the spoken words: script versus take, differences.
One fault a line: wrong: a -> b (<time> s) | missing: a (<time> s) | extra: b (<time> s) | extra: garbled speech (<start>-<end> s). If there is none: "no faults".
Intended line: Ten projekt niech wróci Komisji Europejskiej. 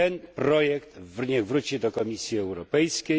extra: do (1.8 s)